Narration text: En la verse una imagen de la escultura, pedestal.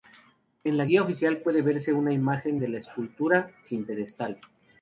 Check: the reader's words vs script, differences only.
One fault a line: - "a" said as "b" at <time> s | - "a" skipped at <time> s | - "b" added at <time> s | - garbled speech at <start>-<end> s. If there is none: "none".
- "guía oficial puede" added at 0.8 s
- "sin" added at 3.6 s